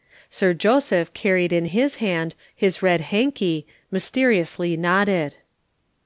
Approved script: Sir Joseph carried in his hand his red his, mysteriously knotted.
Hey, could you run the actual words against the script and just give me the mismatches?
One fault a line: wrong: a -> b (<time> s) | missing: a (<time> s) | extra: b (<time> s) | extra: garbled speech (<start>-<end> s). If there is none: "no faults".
wrong: his -> hanky (3.1 s)